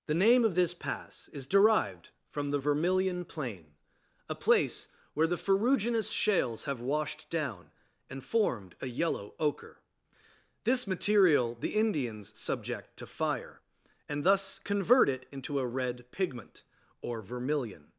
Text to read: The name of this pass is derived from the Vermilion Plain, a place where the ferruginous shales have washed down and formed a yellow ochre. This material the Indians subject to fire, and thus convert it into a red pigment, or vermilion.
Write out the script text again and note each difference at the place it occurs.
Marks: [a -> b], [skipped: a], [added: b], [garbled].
The name of this pass is derived from the Vermilion Plain, a place where the ferruginous shales have washed down and formed a yellow ochre. This material the Indians subject to fire, and thus convert it into a red pigment, or vermilion.